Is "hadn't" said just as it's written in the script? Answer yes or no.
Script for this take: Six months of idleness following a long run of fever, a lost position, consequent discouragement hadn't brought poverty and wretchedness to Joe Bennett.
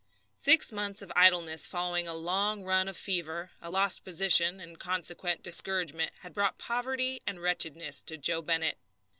no